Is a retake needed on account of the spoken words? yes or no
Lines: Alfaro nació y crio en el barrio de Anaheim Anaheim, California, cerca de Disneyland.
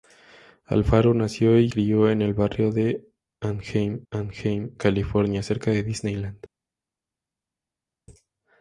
no